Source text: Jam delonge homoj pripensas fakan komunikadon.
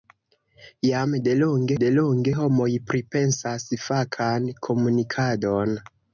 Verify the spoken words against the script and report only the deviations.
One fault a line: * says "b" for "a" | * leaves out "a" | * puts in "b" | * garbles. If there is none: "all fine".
* puts in "delonge"